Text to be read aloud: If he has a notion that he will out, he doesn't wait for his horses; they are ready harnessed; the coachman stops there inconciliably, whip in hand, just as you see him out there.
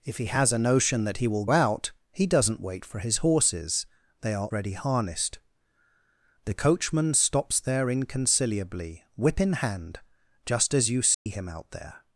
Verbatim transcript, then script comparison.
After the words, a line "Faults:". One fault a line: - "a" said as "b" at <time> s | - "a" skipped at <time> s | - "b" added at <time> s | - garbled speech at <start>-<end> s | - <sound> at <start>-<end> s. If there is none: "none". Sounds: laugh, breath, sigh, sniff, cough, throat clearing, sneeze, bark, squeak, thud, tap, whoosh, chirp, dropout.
If he has a notion that he will out, he doesn't wait for his horses; they are ready harnessed; the coachman stops there inconciliably, whip in hand, just as you see him out there.
Faults:
- dropout at 11.1-11.3 s